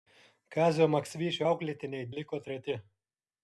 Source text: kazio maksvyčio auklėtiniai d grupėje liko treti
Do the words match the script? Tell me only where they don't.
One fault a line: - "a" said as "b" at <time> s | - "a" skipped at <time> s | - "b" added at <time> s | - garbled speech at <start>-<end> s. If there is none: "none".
- "d grupėje" skipped at 2.1 s